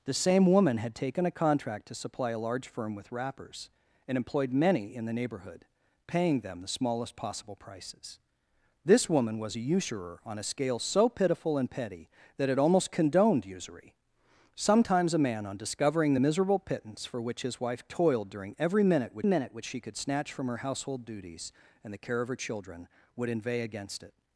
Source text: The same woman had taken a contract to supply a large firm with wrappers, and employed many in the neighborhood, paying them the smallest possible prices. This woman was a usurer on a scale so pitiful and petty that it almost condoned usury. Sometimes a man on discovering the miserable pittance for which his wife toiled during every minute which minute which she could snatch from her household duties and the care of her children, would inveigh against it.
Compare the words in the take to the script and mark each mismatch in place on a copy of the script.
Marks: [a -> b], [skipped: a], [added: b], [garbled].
The same woman had taken a contract to supply a large firm with wrappers, and employed many in the neighborhood, paying them the smallest possible prices. This woman was a usurer on a scale so pitiful and petty that it almost condoned usury. Sometimes a man on discovering the miserable pittance for which his wife toiled during every minute which minute which she could snatch from her household duties and the care of her children, would inveigh against it.